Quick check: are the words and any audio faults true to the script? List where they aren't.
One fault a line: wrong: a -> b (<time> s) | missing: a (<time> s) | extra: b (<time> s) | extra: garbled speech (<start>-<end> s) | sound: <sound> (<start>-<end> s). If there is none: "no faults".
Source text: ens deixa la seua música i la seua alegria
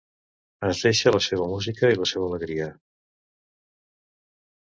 no faults